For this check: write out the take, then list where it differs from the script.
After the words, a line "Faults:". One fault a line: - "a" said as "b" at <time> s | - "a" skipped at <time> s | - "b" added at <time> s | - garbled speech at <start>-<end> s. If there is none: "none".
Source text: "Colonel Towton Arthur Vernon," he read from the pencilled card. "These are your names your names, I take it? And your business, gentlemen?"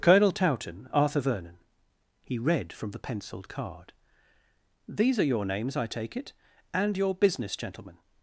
"Colonel Towton Arthur Vernon," he read from the pencilled card. "These are your names, I take it? And your business, gentlemen?"
Faults:
- "your names" skipped at 5.8 s